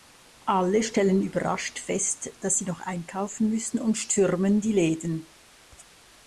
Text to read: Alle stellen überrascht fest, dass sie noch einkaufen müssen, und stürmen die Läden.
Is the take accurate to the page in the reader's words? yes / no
yes